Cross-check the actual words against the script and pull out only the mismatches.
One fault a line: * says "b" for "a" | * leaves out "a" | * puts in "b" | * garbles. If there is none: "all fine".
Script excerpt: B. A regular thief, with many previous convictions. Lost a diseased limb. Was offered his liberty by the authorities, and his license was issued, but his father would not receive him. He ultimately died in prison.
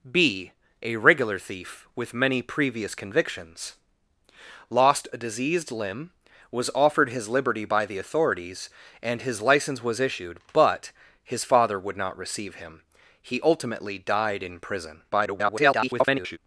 * garbles